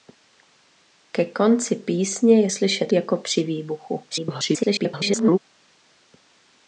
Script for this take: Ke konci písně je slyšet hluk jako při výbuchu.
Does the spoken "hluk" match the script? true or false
false